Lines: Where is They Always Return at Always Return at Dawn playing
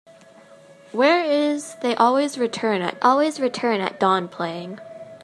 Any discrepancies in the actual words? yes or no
no